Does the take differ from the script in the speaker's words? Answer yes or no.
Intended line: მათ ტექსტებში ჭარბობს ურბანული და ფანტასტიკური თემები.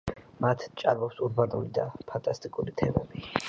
yes